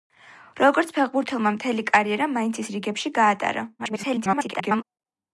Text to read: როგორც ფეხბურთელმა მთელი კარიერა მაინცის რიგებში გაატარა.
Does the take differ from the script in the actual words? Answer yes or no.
yes